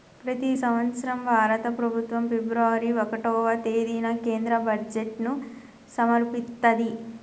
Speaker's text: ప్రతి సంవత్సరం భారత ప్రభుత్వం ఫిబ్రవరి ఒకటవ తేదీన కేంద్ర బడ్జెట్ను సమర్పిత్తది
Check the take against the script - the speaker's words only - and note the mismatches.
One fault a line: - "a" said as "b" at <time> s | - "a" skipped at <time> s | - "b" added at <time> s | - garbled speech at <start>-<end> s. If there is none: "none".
none